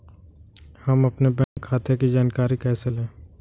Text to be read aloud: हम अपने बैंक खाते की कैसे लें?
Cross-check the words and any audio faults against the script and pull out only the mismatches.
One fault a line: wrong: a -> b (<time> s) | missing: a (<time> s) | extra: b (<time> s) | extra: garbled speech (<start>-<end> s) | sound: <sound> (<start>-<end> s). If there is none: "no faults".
sound: dropout (1.4-1.6 s)
extra: जानकारी (2.1 s)